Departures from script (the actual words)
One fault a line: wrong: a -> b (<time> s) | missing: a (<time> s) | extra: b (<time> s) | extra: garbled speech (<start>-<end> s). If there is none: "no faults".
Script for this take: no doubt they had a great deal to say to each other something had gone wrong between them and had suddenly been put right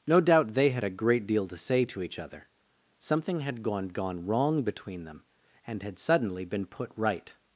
extra: gone (3.9 s)